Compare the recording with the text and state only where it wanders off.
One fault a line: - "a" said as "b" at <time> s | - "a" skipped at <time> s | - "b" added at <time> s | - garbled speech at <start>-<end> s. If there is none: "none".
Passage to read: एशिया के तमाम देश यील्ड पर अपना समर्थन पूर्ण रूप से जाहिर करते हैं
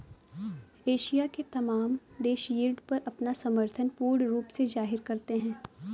none